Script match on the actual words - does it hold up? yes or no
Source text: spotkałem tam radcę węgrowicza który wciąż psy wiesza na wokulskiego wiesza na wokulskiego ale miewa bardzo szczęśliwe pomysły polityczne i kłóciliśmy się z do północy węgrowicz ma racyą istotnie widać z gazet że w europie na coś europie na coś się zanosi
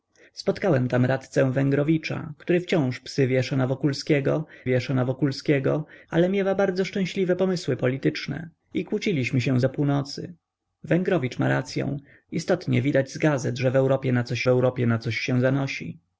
yes